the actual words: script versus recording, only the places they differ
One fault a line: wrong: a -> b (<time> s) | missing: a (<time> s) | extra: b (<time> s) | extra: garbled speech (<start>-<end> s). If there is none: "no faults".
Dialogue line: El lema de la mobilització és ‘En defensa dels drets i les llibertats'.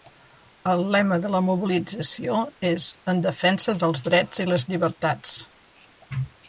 no faults